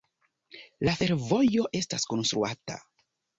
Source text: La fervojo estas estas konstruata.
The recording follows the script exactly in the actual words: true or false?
false